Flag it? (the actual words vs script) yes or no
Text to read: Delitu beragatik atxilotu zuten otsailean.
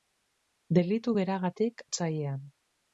yes